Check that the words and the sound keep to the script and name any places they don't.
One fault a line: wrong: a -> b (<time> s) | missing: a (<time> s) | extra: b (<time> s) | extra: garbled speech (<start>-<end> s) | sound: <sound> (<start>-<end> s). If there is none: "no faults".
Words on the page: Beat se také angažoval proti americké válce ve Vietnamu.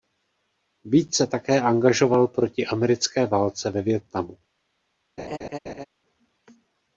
sound: laugh (5.2-5.9 s)